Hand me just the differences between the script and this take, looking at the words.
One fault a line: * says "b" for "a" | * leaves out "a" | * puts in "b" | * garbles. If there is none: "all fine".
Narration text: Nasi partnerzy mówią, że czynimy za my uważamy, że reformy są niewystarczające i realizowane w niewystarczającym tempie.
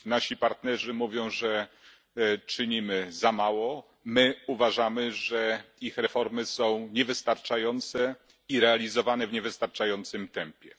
* puts in "mało"
* puts in "ich"